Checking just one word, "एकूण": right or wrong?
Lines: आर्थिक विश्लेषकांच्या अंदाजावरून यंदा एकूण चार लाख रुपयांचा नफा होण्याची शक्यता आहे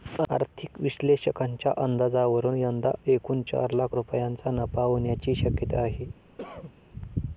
right